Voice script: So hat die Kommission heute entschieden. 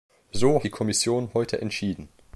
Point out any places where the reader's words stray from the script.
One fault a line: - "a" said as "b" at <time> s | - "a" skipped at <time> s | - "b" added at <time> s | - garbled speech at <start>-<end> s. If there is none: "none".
- "hat" skipped at 0.6 s